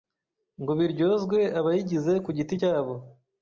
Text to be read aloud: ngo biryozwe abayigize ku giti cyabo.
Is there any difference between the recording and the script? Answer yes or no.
no